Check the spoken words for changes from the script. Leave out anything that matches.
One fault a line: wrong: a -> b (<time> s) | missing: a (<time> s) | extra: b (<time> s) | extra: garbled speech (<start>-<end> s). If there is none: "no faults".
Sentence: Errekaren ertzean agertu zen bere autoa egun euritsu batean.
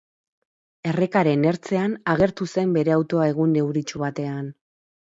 no faults